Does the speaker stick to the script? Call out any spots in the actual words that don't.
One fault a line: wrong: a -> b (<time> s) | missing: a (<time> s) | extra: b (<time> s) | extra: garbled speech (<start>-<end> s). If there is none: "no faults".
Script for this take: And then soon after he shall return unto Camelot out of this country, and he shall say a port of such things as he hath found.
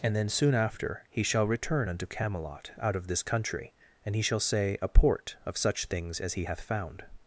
no faults